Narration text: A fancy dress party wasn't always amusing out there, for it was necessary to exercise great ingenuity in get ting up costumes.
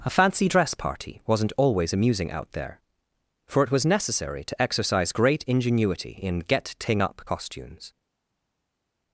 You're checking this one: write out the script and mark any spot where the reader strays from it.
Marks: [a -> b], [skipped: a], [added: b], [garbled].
A fancy dress party wasn't always amusing out there, for it was necessary to exercise great ingenuity in get ting up costumes.